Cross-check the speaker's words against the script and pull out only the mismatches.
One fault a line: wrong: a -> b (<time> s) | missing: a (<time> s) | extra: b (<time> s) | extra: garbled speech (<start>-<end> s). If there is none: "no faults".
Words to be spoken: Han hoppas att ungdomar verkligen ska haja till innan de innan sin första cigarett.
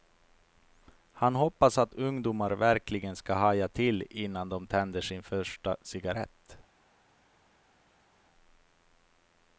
wrong: innan -> tänder (4.7 s)